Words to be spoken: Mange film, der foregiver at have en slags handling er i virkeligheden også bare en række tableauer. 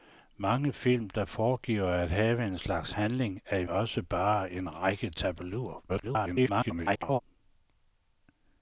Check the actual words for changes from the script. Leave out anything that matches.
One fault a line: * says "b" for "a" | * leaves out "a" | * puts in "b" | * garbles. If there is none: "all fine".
* leaves out "virkeligheden"
* garbles